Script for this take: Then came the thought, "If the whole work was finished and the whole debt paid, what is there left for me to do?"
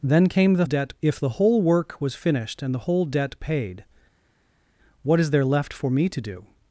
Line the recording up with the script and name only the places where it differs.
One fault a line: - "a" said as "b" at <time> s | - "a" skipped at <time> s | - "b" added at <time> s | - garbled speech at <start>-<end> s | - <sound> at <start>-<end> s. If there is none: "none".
- "thought" said as "debt" at 0.6 s